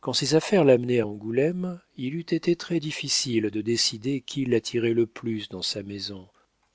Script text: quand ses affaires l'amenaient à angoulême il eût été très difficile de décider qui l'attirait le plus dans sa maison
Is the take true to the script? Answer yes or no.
yes